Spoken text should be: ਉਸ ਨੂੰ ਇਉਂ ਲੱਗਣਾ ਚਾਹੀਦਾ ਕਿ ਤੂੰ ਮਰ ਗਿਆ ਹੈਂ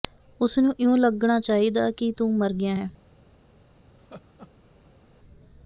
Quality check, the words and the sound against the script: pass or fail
fail